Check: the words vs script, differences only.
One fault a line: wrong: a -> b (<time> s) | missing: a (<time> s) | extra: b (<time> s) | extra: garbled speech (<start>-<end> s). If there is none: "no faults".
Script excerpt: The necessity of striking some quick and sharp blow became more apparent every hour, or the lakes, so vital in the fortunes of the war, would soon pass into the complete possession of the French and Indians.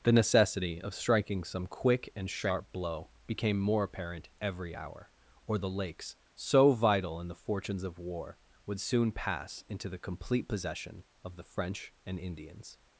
missing: the (8.0 s)